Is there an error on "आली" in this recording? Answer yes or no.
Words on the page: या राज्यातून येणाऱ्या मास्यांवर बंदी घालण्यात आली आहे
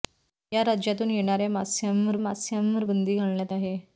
yes